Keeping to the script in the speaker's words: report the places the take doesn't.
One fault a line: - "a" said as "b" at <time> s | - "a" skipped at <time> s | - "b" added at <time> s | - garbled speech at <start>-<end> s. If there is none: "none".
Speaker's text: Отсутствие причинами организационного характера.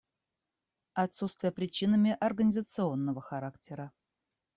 none